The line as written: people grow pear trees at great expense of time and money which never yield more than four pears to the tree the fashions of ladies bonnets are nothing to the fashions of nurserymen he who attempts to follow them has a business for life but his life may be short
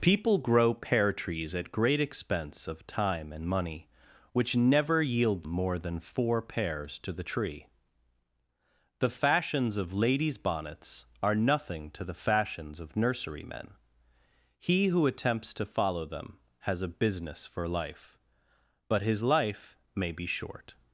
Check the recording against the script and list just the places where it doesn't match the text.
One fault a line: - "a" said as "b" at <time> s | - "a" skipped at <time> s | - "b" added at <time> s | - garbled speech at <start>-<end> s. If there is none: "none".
none